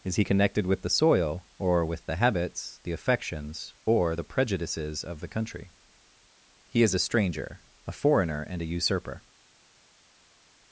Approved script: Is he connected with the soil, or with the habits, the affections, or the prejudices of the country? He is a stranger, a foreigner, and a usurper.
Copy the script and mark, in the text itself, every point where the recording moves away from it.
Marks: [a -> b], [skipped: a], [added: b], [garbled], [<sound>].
Is he connected with the soil, or with the habits, the affections, or the prejudices of the country? He is a stranger, a foreigner, and a usurper.